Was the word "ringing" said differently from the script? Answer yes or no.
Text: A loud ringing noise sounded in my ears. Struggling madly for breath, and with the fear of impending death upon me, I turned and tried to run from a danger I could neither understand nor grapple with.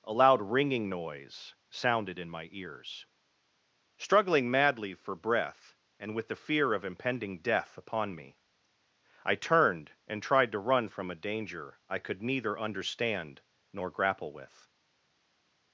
no